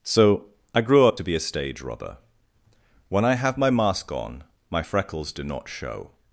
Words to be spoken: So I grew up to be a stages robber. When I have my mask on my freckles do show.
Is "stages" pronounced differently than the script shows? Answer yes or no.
yes